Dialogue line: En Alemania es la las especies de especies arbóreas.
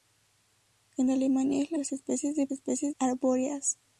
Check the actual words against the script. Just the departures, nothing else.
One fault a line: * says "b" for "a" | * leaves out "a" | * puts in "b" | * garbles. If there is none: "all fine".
all fine